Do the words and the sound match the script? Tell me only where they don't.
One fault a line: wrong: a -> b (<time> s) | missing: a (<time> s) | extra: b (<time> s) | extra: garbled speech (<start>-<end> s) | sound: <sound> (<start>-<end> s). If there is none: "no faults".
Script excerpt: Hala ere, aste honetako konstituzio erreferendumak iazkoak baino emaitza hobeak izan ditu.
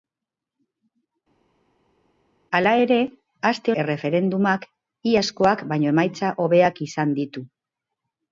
missing: honetako konstituzio (3.7 s)